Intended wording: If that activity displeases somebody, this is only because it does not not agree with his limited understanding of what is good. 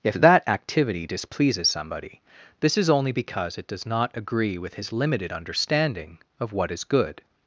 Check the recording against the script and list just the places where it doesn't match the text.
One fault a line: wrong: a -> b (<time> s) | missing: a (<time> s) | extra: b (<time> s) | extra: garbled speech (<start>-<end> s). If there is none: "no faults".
missing: not (4.1 s)